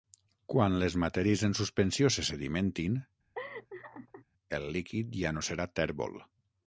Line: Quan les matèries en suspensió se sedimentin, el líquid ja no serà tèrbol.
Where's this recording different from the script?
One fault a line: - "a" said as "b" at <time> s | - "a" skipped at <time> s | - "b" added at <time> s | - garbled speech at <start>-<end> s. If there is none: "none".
none